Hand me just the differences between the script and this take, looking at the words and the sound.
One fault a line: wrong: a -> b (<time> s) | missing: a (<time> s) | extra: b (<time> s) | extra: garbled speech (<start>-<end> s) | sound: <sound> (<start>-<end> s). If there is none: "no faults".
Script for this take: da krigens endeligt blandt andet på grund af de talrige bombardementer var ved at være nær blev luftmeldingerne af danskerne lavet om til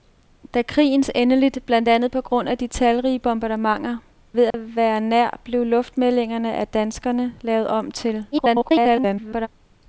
missing: var (4.0 s)
sound: dropout (4.5-4.5 s)
extra: garbled speech (8.3-9.5 s)